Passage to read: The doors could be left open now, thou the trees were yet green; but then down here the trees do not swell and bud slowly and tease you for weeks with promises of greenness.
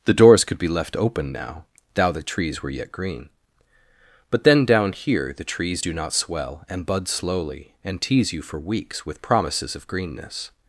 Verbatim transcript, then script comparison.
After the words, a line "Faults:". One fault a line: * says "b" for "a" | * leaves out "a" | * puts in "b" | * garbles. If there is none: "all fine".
The doors could be left open now, thou the trees were yet green; but then down here the trees do not swell and bud slowly and tease you for weeks with promises of greenness.
Faults:
all fine